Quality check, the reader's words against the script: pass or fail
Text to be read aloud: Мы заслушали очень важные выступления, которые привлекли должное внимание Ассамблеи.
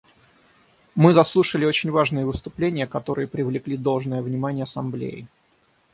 pass